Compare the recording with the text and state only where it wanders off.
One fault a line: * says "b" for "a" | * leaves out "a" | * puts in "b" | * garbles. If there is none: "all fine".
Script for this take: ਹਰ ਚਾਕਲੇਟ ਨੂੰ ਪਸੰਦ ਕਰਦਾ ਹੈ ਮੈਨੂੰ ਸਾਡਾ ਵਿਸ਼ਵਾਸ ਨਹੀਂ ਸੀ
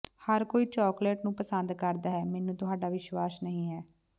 * puts in "ਕੋਈ"
* says "ਤੁਹਾਡਾ" for "ਸਾਡਾ"
* says "ਹੈ" for "ਸੀ"